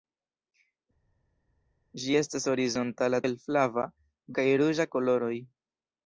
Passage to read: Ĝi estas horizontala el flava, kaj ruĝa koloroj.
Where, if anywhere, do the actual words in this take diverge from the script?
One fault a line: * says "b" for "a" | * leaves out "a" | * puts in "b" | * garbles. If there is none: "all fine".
all fine